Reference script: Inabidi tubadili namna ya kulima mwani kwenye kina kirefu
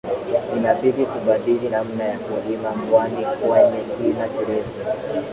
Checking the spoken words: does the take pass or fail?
pass